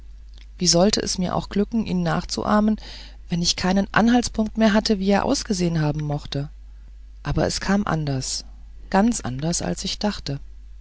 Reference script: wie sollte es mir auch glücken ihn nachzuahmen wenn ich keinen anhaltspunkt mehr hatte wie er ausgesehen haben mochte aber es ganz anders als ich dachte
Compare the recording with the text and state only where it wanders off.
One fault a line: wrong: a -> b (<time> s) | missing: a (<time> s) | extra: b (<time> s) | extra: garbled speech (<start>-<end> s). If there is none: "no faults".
extra: kam anders (7.6 s)